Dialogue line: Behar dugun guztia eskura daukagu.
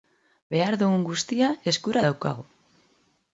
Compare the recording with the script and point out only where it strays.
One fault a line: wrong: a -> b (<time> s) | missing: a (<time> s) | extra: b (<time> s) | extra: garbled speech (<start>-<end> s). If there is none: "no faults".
no faults